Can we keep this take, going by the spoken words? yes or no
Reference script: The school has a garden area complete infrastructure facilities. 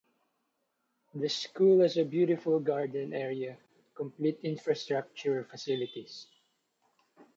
no